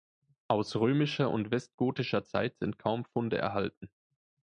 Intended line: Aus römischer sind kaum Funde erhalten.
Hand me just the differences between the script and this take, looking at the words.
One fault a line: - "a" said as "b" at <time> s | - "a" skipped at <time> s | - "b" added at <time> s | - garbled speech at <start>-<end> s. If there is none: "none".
- "und westgotischer Zeit" added at 1.3 s